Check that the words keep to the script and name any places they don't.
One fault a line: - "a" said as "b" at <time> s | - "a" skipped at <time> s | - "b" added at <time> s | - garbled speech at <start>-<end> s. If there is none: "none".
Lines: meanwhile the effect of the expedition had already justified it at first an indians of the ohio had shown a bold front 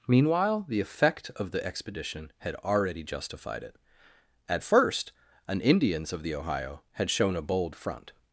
none